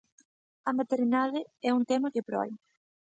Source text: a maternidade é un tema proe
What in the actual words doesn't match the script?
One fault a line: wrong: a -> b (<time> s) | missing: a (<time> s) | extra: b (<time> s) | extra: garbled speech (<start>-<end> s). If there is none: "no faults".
extra: que (2.1 s)